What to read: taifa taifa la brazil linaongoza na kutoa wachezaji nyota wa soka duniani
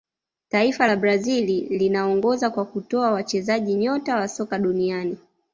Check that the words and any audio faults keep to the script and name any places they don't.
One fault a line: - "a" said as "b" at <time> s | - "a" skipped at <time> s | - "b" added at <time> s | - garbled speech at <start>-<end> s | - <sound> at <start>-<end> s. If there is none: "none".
- "taifa" skipped at 0.9 s
- "na" said as "kwa" at 2.5 s